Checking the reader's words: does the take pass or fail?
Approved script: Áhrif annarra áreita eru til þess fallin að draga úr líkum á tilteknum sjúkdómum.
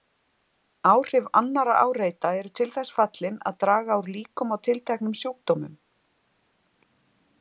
pass